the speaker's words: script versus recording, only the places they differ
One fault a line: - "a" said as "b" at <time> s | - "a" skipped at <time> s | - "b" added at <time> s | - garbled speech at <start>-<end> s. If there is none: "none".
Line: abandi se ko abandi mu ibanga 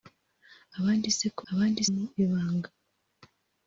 none